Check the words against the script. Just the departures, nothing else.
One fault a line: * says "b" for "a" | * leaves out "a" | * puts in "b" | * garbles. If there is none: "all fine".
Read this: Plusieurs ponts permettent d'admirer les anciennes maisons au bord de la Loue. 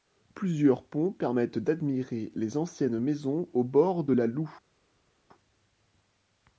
all fine